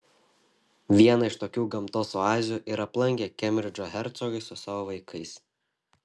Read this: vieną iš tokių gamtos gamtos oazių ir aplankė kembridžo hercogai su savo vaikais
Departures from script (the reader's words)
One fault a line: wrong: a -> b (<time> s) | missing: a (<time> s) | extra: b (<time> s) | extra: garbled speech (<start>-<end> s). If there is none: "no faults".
missing: gamtos (2.1 s)